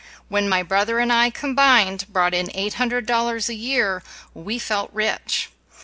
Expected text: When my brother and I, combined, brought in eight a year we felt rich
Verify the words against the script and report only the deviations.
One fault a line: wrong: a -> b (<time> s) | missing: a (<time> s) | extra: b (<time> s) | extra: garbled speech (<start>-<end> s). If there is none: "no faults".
extra: hundred dollars (2.7 s)